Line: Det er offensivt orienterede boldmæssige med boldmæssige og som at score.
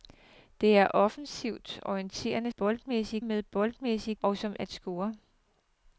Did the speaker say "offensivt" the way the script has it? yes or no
yes